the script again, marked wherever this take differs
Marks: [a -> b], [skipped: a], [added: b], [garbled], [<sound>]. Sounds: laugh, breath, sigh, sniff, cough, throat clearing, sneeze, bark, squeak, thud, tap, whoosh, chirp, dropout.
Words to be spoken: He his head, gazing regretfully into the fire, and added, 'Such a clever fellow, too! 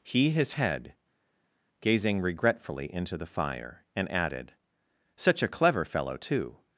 He his head, gazing regretfully into the fire, and added, 'Such a clever fellow, too!